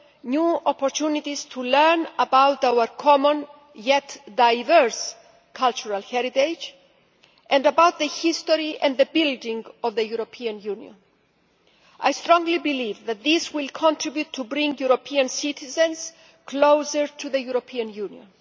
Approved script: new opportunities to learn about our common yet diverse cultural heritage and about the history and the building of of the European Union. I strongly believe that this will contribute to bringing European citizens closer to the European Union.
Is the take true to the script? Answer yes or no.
no